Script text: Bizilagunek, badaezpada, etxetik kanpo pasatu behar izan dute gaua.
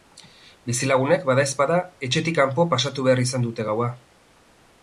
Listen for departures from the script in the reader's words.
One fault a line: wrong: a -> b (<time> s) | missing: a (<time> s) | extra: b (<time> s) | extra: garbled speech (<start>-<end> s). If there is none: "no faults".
no faults